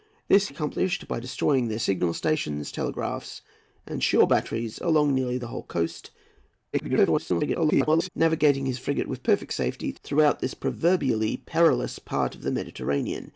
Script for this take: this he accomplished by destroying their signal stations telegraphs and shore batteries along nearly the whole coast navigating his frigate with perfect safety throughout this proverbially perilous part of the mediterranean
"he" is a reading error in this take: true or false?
true